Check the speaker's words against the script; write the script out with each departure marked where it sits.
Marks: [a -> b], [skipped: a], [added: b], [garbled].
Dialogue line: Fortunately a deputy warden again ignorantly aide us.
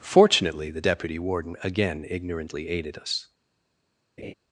Fortunately [a -> the] deputy warden again ignorantly [aide -> aided] us.